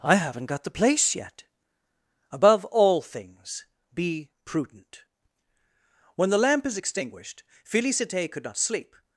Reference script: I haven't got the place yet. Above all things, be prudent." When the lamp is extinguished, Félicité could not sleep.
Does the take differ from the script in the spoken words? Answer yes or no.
no